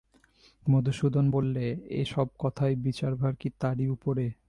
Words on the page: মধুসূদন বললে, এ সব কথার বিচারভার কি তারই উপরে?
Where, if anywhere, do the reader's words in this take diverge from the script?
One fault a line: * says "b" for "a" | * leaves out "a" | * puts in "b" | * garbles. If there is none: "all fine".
all fine